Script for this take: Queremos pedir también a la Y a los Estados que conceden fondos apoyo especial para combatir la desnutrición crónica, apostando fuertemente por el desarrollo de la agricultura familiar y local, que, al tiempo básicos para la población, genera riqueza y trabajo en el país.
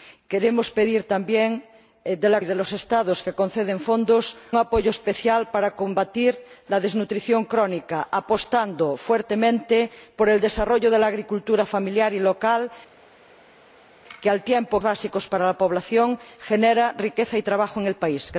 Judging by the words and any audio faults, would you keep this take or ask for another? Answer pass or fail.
pass